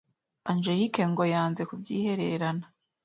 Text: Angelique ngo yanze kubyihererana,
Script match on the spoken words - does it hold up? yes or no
yes